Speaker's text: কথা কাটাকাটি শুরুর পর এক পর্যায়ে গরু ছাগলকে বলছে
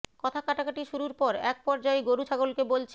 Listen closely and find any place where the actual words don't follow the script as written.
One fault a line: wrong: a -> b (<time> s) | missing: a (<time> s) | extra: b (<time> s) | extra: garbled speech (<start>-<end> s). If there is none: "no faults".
no faults